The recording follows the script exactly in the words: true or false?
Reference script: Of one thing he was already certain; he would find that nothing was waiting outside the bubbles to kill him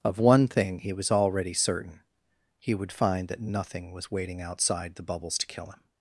true